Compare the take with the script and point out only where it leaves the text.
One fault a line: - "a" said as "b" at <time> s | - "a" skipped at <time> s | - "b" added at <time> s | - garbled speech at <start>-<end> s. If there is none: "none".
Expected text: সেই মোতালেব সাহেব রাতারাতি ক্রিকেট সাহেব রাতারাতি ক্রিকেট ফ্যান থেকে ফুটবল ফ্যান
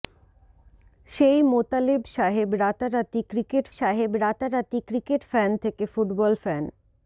none